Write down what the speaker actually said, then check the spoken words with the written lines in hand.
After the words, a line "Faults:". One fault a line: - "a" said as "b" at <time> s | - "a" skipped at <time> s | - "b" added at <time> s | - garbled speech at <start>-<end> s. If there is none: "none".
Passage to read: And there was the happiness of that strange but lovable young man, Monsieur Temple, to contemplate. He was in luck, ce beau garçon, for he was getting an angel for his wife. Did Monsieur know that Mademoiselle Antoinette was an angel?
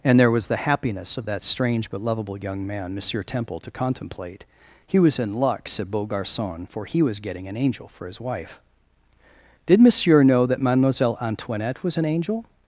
And there was the happiness of that strange but lovable young man, Monsieur Temple, to contemplate. He was in luck, said beau garçon, for he was getting an angel for his wife. Did Monsieur know that Mademoiselle Antoinette was an angel?
Faults:
- "ce" said as "said" at 5.7 s